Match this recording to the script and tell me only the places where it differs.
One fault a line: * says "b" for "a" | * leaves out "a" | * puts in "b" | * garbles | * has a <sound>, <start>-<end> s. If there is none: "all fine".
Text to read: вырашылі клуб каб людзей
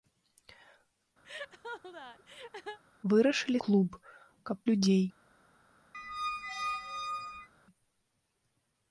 * has a laugh, 1.2-2.8 s
* has a squeak, 5.9-7.5 s